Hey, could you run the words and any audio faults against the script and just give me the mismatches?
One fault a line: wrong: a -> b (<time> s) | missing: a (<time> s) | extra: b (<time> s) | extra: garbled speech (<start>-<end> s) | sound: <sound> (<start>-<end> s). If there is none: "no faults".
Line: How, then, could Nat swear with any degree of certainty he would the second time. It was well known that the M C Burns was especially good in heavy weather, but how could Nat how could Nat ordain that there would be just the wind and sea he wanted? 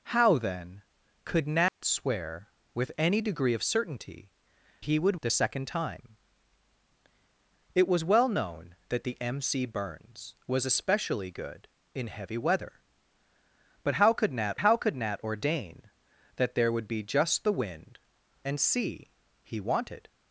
sound: dropout (1.7-1.8 s)